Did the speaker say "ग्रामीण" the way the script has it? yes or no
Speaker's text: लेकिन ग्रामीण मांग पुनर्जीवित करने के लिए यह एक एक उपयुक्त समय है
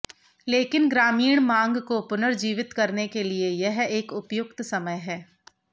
yes